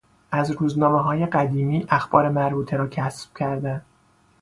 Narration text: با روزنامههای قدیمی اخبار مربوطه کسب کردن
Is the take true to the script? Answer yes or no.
no